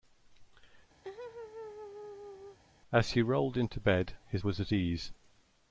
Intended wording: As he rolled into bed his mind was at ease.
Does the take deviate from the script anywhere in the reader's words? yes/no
yes